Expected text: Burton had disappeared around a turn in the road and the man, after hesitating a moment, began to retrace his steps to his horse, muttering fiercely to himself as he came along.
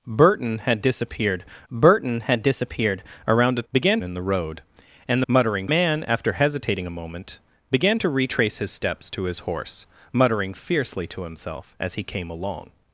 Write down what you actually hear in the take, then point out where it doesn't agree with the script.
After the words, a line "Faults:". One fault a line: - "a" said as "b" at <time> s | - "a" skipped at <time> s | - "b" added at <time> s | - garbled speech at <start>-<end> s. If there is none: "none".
Burton had disappeared burton had disappeared around a began in the road and muttering man, after hesitating a moment, began to retrace his steps to his horse, muttering fiercely to himself as he came along.
Faults:
- "burton had disappeared" added at 1.7 s
- "turn" said as "began" at 3.7 s
- "the" said as "muttering" at 5.3 s